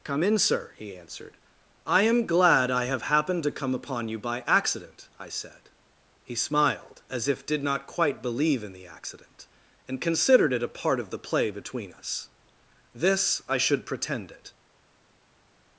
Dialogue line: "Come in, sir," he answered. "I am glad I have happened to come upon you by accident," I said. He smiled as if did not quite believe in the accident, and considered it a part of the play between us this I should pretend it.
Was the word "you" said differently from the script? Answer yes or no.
no